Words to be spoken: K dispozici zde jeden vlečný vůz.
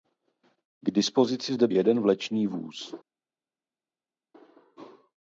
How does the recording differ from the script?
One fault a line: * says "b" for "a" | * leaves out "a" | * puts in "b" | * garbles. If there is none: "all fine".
all fine